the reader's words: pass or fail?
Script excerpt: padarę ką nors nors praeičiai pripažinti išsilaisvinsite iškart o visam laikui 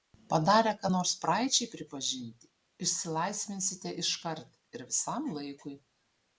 fail